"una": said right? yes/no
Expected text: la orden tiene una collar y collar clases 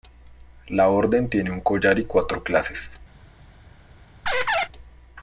no